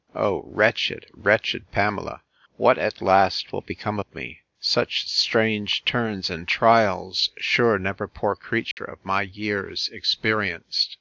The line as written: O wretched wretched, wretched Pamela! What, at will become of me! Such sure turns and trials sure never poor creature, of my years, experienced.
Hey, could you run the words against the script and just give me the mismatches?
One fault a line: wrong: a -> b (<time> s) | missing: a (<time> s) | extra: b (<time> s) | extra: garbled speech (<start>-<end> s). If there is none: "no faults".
missing: wretched (1.7 s)
extra: last (3.0 s)
wrong: sure -> strange (5.1 s)